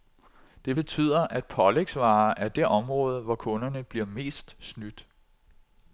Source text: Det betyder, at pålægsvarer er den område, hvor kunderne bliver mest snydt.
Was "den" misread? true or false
true